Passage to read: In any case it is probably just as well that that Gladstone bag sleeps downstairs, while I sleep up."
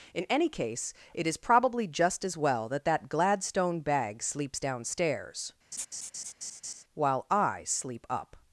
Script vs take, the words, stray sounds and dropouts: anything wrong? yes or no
yes